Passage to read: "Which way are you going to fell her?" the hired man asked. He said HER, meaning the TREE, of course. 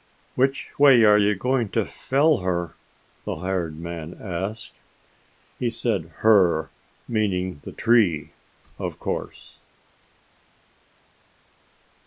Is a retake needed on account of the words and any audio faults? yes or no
no